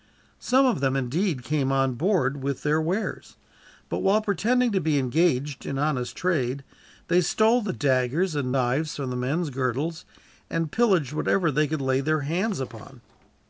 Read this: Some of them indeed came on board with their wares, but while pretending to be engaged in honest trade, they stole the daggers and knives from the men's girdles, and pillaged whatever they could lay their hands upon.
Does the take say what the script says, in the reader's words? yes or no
yes